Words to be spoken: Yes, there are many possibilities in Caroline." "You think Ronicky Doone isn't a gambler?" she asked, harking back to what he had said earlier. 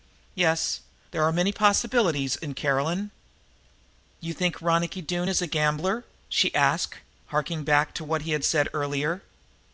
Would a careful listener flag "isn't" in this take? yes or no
yes